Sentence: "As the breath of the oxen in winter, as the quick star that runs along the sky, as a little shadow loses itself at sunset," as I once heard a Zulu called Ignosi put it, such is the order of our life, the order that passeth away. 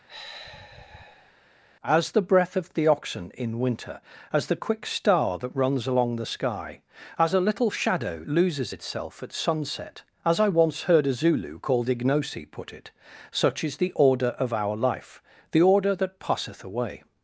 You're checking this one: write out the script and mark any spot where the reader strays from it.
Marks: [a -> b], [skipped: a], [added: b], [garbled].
"As the breath of the oxen in winter, as the quick star that runs along the sky, as a little shadow loses itself at sunset," as I once heard a Zulu called Ignosi put it, such is the order of our life, the order that passeth away.